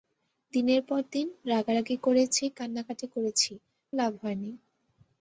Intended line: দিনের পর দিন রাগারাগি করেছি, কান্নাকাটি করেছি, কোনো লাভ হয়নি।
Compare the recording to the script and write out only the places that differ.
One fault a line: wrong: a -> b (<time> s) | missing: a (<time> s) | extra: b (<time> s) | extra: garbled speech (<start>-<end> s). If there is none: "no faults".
missing: কোনো (3.5 s)